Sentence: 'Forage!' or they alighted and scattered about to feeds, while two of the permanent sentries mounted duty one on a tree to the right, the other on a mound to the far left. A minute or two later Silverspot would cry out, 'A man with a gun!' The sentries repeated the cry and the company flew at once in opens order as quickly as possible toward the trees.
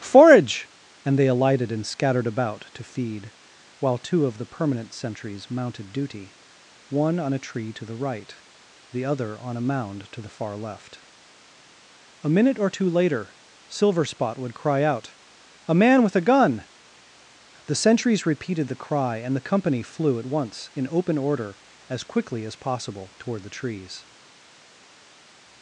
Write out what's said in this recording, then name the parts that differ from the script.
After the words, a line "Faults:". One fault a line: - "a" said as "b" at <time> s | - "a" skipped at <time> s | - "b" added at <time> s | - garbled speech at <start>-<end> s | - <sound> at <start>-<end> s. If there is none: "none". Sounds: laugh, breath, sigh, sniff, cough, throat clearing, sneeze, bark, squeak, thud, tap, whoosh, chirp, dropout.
'Forage!' and they alighted and scattered about to feed, while two of the permanent sentries mounted duty one on a tree to the right, the other on a mound to the far left. A minute or two later Silverspot would cry out, 'A man with a gun!' The sentries repeated the cry and the company flew at once in open order as quickly as possible toward the trees.
Faults:
- "or" said as "and" at 1.1 s
- "feeds" said as "feed" at 2.8 s
- "opens" said as "open" at 20.9 s